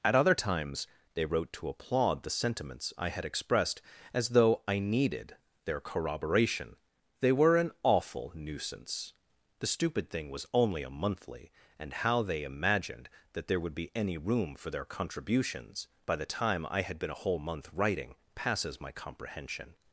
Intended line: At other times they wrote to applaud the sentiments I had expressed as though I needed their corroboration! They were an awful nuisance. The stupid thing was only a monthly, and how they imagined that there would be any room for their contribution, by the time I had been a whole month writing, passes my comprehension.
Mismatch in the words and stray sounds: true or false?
true